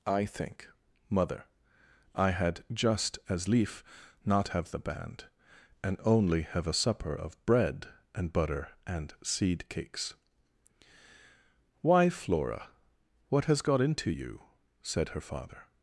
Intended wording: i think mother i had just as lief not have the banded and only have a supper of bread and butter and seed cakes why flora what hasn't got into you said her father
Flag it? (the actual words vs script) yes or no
yes